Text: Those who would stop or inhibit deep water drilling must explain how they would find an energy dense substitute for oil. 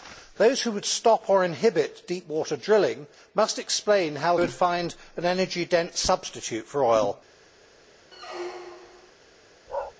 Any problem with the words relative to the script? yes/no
yes